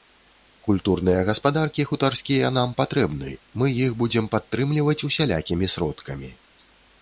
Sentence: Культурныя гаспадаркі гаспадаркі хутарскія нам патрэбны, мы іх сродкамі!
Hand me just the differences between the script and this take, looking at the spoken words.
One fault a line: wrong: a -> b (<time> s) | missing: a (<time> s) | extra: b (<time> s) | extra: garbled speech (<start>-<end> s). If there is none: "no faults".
missing: гаспадаркі (1.9 s)
extra: будзем падтрымліваць усялякімі (4.0 s)